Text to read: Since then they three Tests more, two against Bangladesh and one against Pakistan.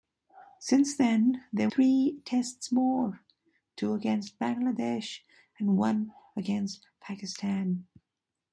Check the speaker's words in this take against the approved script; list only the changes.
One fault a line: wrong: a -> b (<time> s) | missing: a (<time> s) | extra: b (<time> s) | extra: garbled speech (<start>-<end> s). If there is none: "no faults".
no faults